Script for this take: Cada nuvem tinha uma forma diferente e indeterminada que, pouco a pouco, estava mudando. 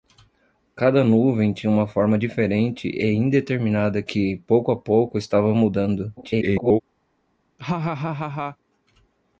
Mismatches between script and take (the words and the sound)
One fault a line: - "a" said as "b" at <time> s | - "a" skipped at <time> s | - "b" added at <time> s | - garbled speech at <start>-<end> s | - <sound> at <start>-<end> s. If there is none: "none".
- garbled speech at 6.2-6.8 s
- laugh at 7.6-8.6 s